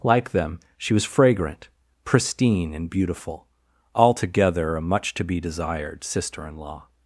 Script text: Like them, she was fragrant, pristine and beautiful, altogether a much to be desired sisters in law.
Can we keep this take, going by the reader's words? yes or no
no